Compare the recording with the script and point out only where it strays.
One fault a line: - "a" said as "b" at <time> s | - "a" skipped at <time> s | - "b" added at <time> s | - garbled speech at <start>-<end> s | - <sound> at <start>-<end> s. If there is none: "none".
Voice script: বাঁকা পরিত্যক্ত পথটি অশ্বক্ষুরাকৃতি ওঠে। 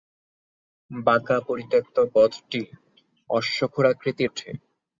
none